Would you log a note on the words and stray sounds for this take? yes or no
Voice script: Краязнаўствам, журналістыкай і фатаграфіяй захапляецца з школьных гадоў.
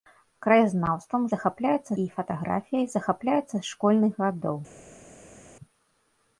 yes